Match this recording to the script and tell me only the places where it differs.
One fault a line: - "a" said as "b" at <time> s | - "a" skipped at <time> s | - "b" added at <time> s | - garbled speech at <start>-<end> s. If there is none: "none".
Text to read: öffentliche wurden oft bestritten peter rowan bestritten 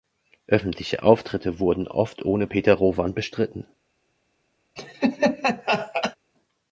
- "auftritte" added at 1.0 s
- "bestritten" said as "ohne" at 2.2 s